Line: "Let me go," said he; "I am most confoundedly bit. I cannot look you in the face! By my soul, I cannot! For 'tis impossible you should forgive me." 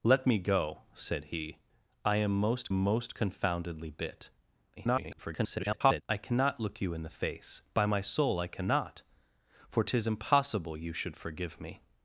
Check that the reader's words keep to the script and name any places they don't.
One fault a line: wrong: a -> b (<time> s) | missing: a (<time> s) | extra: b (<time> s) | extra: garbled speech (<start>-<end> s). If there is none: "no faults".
extra: most (2.7 s)
extra: garbled speech (4.8-6.0 s)